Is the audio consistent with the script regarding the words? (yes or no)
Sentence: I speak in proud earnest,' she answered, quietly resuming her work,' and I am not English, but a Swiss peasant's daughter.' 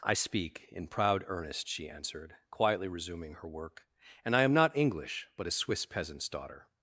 yes